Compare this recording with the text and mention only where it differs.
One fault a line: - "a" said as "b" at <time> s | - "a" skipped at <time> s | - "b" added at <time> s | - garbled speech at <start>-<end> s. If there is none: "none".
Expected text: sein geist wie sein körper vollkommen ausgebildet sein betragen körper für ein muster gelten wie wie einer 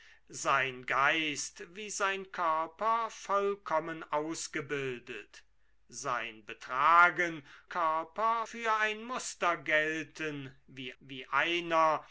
none